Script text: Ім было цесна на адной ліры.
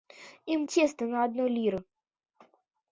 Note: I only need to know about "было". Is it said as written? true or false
false